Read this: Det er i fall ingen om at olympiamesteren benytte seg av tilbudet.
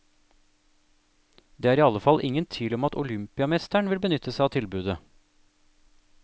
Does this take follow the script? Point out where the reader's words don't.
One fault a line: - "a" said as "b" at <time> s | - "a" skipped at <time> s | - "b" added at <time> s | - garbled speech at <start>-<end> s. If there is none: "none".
- "alle" added at 1.9 s
- "tvil" added at 2.5 s
- "vil" added at 3.9 s